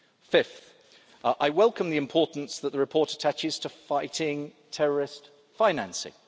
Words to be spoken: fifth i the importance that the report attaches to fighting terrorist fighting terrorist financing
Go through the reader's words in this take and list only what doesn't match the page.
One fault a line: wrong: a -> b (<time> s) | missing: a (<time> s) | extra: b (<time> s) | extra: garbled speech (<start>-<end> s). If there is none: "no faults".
extra: welcome (1.5 s)
missing: fighting terrorist (5.3 s)